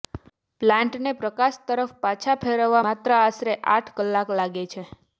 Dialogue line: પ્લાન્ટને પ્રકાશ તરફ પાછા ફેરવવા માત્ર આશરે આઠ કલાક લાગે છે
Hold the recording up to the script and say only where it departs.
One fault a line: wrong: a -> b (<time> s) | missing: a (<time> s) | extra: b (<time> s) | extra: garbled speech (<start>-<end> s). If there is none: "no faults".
no faults